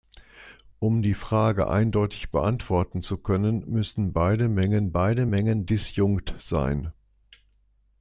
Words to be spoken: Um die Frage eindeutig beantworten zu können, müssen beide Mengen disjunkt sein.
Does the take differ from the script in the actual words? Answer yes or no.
yes